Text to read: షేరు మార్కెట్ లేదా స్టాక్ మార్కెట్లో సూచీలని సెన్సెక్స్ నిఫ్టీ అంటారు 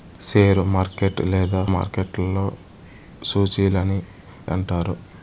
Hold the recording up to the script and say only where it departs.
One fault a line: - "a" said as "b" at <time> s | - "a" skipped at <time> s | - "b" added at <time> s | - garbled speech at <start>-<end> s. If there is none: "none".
- "స్టాక్" skipped at 1.6 s
- "సెన్సెక్స్ నిఫ్టీ" skipped at 4.0 s